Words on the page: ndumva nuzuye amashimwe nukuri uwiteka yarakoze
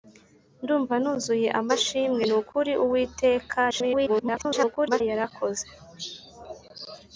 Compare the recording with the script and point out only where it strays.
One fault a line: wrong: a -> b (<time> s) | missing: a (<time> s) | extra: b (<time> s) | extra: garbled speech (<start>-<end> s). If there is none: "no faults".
extra: garbled speech (3.7-5.0 s)